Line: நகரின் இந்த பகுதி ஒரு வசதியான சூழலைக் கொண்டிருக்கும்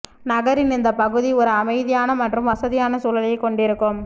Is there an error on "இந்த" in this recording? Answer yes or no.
no